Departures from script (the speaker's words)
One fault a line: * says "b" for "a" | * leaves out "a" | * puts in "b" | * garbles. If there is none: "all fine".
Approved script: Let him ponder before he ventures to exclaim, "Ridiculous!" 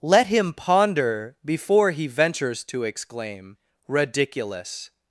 all fine